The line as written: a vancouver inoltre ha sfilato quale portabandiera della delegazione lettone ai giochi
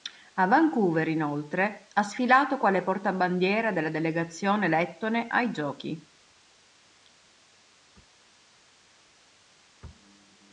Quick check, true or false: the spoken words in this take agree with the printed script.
true